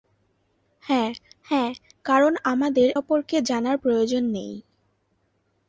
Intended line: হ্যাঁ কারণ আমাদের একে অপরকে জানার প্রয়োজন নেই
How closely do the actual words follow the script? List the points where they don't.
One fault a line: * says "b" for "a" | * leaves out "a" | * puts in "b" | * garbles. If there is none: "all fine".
* puts in "হ্যাঁ"
* leaves out "একে"